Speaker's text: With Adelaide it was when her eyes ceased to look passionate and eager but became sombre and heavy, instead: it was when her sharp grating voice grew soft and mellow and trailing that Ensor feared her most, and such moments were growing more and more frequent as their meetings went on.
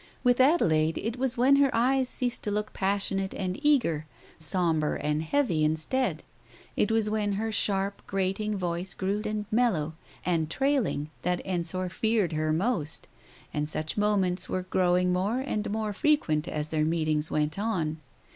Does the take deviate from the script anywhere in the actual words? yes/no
yes